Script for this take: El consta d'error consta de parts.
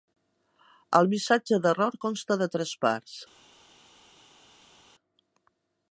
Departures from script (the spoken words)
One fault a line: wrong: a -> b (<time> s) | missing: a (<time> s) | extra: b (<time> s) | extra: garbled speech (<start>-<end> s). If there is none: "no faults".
wrong: consta -> missatge (1.1 s)
extra: tres (2.6 s)